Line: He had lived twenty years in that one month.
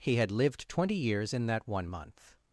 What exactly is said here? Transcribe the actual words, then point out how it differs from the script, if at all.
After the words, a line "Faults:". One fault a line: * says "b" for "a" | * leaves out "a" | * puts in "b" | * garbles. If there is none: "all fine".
He had lived twenty years in that one month.
Faults:
all fine